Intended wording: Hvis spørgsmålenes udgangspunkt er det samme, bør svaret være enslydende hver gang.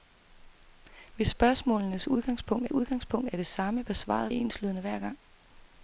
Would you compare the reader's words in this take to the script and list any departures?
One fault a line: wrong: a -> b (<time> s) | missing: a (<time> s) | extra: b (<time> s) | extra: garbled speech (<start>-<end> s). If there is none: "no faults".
extra: udgangspunkt (2.7 s)
missing: være (4.3 s)